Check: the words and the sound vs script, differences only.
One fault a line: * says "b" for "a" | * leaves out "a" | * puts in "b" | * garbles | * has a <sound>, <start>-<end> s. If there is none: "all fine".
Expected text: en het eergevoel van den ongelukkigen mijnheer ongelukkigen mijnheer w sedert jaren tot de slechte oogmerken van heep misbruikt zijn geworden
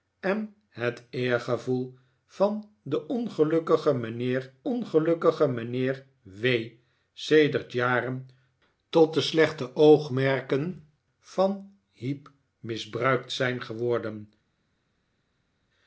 all fine